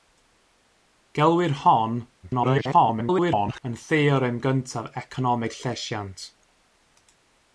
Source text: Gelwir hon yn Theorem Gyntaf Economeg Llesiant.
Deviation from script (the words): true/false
true